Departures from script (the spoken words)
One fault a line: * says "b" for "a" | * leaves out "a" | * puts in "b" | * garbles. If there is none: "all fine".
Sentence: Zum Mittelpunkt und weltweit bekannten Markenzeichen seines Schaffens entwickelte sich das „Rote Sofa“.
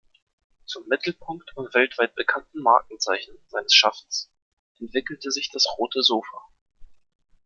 all fine